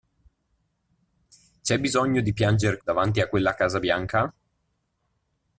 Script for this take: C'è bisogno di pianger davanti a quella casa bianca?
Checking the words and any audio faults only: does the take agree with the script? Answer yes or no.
yes